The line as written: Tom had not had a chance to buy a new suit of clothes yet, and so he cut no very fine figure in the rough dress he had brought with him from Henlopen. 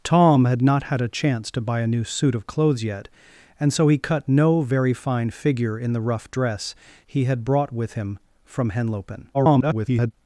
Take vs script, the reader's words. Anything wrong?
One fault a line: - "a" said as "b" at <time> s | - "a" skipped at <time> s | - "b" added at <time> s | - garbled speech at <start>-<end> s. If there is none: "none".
- garbled speech at 9.3-10.1 s